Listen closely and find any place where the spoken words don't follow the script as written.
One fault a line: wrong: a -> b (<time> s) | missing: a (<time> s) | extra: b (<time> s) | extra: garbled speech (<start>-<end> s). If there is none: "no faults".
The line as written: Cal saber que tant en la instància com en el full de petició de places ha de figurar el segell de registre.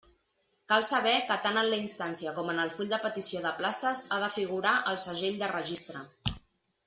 no faults